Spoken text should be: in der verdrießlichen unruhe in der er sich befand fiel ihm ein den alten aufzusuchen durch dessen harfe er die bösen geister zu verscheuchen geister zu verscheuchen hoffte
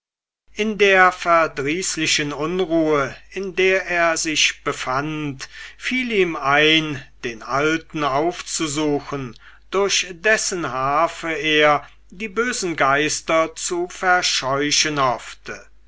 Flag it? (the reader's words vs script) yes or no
yes